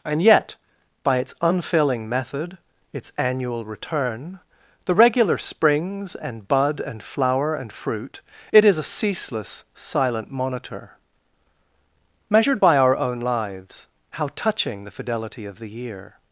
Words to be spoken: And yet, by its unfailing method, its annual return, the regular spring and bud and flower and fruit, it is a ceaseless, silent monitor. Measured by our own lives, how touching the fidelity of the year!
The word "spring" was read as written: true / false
false